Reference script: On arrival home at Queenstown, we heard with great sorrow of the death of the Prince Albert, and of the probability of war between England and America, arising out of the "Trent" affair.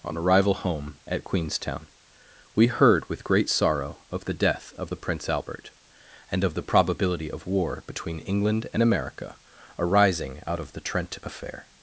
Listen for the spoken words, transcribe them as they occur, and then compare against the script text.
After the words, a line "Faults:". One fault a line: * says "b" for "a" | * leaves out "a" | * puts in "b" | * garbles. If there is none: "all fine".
On arrival home at Queenstown, we heard with great sorrow of the death of the Prince Albert, and of the probability of war between England and America, arising out of the "Trent" affair.
Faults:
all fine